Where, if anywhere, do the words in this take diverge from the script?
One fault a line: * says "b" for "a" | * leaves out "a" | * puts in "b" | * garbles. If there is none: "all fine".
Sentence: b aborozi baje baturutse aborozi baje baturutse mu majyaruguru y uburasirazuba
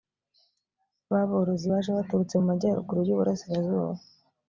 * leaves out "aborozi baje baturutse"